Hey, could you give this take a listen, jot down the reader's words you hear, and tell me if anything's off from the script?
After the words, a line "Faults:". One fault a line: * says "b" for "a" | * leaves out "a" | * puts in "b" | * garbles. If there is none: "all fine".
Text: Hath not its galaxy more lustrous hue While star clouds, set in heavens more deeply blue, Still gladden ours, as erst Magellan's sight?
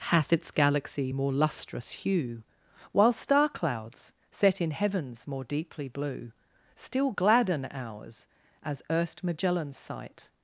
Hath its galaxy more lustrous hue While star clouds, set in heavens more deeply blue, Still gladden ours, as erst Magellan's sight?
Faults:
* leaves out "not"